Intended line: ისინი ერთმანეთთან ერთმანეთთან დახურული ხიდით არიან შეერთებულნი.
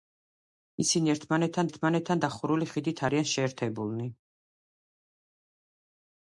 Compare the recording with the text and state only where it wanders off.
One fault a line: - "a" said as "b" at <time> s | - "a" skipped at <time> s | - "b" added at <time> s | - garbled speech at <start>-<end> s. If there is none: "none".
none